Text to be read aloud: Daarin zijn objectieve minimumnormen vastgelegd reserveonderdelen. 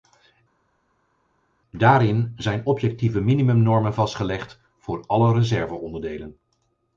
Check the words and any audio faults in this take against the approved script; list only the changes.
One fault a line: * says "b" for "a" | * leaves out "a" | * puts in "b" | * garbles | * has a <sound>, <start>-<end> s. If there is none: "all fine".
* puts in "voor alle"